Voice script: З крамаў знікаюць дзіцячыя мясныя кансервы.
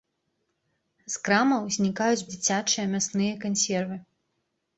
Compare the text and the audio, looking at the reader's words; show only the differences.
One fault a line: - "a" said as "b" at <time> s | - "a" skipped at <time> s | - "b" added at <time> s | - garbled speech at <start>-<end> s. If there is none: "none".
none